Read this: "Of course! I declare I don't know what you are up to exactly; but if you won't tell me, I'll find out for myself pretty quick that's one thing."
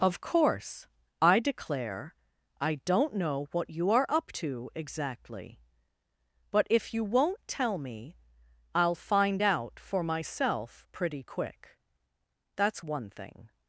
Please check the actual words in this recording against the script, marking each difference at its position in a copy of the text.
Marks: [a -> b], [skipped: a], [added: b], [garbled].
"Of course! I declare I don't know what you are up to exactly; but if you won't tell me, I'll find out for myself pretty quick that's one thing."